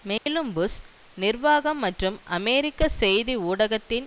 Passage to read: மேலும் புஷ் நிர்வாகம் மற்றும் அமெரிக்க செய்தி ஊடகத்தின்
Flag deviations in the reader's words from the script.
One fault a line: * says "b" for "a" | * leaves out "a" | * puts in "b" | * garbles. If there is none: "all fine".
all fine